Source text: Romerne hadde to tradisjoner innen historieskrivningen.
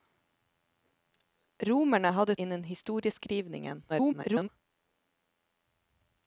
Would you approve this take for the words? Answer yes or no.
no